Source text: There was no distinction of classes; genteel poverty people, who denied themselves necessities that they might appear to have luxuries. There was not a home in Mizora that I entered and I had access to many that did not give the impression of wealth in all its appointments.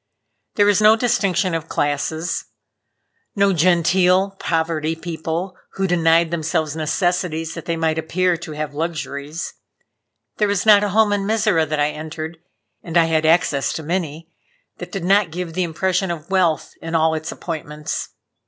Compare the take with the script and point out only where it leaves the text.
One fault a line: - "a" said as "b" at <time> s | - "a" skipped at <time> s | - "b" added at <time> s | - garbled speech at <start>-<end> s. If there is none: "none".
- "no" added at 3.3 s